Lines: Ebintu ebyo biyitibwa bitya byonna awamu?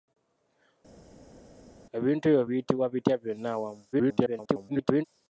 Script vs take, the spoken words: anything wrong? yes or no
yes